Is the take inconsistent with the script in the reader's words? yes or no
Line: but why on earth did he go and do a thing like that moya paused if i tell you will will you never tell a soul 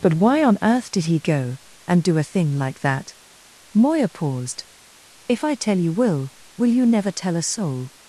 no